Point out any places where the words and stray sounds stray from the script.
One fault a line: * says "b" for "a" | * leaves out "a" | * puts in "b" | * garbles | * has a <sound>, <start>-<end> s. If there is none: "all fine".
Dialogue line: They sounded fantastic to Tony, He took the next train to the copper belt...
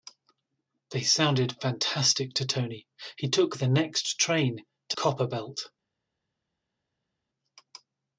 * leaves out "the"